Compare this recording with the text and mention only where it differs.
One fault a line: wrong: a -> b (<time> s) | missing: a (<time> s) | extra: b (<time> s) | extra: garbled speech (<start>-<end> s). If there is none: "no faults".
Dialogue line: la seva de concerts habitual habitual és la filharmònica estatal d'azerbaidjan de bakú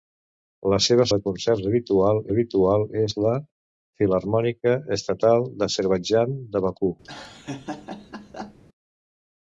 no faults